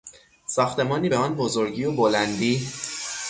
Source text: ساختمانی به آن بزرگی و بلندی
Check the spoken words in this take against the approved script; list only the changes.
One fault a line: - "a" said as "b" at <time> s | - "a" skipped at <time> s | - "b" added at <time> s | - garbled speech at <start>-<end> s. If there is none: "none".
none